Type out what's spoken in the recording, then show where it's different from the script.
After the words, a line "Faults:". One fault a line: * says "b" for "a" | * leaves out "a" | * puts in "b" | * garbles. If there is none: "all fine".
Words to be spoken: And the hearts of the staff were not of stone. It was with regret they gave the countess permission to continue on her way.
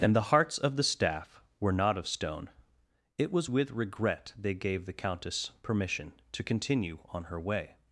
And the hearts of the staff were not of stone. It was with regret they gave the countess permission to continue on her way.
Faults:
all fine